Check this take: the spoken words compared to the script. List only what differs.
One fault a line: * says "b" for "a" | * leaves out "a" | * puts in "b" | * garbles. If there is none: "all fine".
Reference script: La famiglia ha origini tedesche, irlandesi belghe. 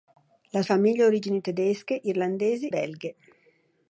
all fine